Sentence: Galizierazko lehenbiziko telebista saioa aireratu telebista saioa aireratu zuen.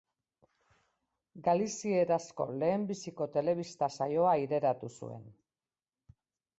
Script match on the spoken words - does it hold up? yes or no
no